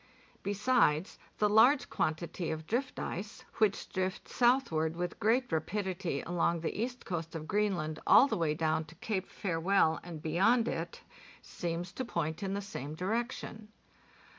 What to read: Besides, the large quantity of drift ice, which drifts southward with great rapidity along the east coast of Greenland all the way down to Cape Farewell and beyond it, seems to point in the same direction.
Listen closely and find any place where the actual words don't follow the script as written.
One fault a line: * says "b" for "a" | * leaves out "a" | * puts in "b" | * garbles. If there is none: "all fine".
all fine